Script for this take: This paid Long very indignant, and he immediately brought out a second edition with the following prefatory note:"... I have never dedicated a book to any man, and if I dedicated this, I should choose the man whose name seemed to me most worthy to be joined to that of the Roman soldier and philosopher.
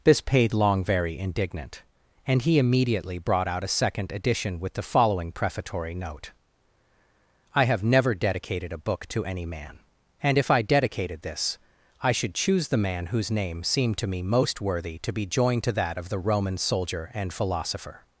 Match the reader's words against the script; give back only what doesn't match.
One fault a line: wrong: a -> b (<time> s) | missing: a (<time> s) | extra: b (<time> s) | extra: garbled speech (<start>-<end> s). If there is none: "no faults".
no faults